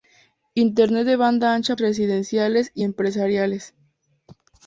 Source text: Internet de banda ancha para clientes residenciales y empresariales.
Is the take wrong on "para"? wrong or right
wrong